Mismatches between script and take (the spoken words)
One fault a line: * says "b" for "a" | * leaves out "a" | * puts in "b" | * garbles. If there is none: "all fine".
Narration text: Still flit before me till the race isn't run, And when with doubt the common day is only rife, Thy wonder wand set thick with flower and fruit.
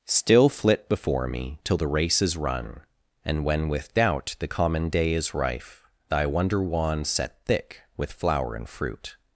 * says "is" for "isn't"
* leaves out "only"